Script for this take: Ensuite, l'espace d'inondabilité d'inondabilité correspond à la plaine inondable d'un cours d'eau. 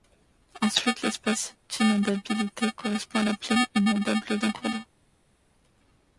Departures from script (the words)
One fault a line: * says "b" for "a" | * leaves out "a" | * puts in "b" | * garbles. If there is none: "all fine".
* leaves out "d'inondabilité"